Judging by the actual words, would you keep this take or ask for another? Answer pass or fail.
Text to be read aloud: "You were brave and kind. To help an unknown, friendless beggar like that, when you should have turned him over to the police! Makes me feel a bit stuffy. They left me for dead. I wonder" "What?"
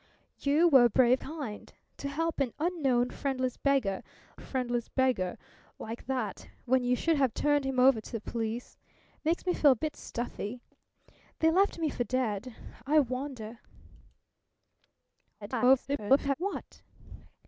fail